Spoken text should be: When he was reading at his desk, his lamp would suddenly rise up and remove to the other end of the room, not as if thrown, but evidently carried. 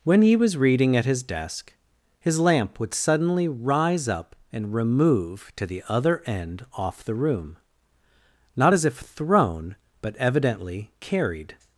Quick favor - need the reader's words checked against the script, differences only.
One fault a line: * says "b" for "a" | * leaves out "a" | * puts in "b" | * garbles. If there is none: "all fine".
* says "off" for "of"